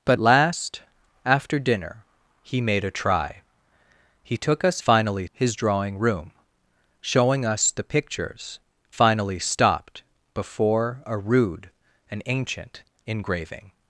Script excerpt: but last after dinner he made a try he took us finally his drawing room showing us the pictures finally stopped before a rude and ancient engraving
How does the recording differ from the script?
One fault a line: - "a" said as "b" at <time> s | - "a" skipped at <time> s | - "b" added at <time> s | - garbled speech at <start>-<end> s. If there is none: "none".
none